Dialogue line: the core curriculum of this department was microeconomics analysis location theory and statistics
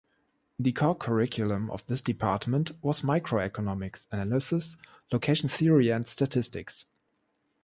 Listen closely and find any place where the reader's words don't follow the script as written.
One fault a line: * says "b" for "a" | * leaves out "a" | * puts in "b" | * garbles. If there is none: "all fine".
all fine